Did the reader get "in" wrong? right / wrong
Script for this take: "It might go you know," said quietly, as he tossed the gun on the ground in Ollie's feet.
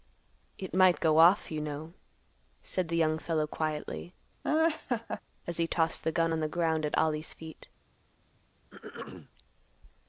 wrong